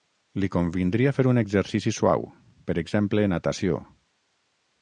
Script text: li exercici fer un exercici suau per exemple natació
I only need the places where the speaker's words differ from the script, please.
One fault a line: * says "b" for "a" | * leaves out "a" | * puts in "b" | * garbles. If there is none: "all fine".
* says "convindria" for "exercici"